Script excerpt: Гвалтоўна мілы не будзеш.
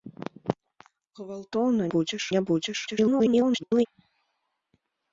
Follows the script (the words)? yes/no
no